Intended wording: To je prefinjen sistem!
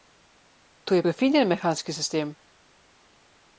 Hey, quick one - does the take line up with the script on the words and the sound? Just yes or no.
no